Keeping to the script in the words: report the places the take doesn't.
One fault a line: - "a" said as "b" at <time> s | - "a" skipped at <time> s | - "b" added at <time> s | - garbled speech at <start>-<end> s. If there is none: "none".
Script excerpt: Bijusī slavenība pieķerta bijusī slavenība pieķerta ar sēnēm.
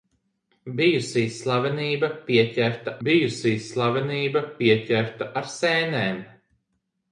none